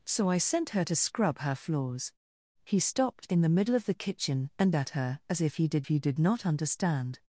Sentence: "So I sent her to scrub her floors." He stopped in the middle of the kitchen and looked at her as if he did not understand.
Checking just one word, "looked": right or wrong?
wrong